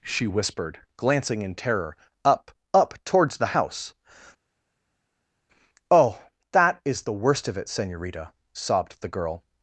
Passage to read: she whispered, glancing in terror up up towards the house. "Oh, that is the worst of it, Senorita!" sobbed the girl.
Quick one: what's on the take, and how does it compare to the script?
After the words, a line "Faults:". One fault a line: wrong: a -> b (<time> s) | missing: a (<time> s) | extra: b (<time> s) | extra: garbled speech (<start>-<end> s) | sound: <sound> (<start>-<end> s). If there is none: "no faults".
she whispered, glancing in terror up up towards the house. "Oh, that is the worst of it, Senorita!" sobbed the girl.
Faults:
no faults